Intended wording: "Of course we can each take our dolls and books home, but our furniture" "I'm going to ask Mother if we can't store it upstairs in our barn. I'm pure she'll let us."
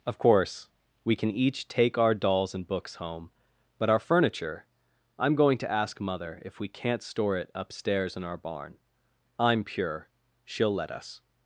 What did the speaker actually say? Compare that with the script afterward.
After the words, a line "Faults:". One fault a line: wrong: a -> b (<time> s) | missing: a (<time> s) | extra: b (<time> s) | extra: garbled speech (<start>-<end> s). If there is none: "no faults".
"Of course we can each take our dolls and books home, but our furniture" "I'm going to ask Mother if we can't store it upstairs in our barn. I'm pure she'll let us."
Faults:
no faults